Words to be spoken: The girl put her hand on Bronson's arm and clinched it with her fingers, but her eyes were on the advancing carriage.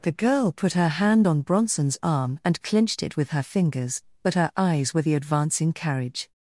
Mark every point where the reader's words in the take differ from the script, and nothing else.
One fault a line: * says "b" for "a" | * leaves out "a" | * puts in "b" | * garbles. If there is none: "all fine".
* leaves out "on"